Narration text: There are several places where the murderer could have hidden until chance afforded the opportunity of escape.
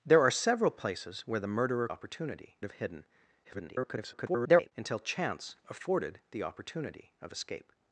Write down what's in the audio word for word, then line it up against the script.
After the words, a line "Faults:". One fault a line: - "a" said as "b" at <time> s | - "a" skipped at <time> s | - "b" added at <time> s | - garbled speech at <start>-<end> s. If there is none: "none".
There are several places where the murderer opportunity have hidden [garbled] until chance afforded the opportunity of escape.
Faults:
- "could" said as "opportunity" at 1.9 s
- garbled speech at 3.4-4.7 s